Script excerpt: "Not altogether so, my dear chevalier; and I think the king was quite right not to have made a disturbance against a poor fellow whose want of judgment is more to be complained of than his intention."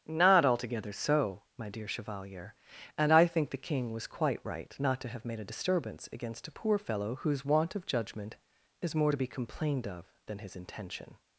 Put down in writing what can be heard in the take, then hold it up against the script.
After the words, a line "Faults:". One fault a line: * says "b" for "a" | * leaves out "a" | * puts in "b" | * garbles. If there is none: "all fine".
"Not altogether so, my dear chevalier; and I think the king was quite right not to have made a disturbance against a poor fellow whose want of judgment is more to be complained of than his intention."
Faults:
all fine